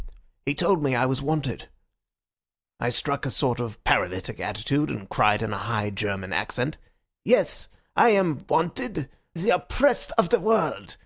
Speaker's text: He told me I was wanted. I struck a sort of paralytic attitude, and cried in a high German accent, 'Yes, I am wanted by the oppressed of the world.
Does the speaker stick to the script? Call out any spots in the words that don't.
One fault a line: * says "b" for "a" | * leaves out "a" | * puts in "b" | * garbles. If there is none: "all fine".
* leaves out "by"